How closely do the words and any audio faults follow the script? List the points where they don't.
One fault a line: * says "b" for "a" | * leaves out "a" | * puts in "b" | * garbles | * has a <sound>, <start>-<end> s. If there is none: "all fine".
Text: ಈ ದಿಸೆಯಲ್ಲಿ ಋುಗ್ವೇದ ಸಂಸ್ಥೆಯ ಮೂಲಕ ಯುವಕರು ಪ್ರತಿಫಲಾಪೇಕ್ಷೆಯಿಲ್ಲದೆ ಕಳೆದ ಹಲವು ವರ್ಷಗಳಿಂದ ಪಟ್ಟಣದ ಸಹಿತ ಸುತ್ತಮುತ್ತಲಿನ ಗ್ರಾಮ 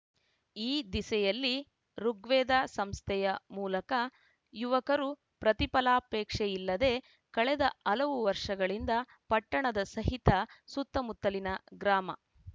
all fine